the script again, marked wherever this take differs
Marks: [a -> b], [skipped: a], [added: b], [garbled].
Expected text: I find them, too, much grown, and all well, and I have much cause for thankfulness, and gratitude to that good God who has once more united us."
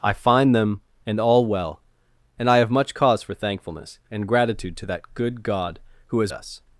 I find them, [skipped: too, much grown,] and all well, and I have much cause for thankfulness, and gratitude to that good God who has [skipped: once more united] us."